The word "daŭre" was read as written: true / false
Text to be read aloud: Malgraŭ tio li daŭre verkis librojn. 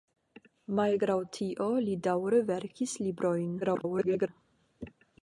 true